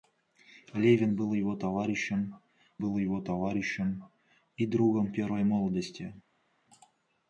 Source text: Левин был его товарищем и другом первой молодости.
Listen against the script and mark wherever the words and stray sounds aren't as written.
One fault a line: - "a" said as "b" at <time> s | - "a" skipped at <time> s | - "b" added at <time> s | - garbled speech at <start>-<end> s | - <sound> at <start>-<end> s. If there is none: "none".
- "был его товарищем" added at 2.8 s